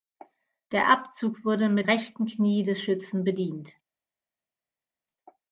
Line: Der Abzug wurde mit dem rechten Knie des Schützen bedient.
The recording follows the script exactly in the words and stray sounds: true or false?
false